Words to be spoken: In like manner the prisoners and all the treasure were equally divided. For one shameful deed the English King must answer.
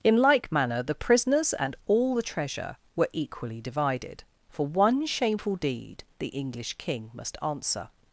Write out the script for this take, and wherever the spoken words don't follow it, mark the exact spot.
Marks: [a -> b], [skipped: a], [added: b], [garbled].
In like manner the prisoners and all the treasure were equally divided. For one shameful deed the English King must answer.